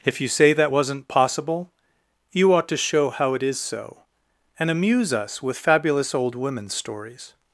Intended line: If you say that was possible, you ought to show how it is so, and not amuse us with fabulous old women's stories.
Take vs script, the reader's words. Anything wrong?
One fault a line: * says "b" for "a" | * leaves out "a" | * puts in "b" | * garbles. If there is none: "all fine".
* says "wasn't" for "was"
* leaves out "not"